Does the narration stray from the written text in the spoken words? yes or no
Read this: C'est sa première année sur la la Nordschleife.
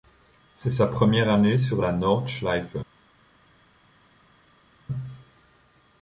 yes